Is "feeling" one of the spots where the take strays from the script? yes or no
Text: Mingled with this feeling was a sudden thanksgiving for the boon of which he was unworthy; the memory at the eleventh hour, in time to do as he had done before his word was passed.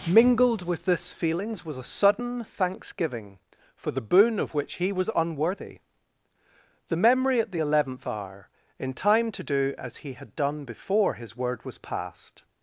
yes